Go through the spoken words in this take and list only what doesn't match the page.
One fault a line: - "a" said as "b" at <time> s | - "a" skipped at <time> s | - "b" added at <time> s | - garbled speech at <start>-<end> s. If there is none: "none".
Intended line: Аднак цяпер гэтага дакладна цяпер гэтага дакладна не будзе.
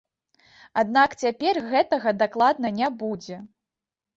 - "цяпер гэтага дакладна" skipped at 2.7 s